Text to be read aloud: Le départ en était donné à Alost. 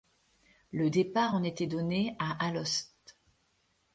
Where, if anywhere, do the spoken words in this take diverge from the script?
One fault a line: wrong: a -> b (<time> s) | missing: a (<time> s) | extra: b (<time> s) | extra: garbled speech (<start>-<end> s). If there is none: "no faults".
no faults